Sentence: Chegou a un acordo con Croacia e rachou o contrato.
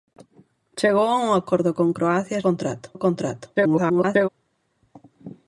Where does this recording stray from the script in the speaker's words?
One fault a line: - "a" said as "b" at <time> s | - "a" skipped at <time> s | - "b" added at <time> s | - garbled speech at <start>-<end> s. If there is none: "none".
- "rachou" said as "contrato" at 2.5 s
- garbled speech at 3.6-4.3 s